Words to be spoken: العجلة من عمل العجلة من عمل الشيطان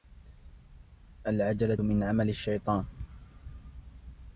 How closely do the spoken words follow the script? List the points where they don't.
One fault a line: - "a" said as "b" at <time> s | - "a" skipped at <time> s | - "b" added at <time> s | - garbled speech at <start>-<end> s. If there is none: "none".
- "العجلة من عمل" skipped at 2.3 s